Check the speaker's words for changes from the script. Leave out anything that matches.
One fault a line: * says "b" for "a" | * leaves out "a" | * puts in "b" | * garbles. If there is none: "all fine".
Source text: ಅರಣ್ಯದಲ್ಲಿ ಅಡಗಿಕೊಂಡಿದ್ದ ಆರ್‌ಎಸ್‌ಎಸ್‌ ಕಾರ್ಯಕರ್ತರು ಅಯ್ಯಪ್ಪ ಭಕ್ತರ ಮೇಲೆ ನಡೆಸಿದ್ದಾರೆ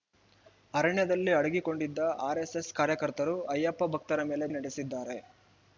all fine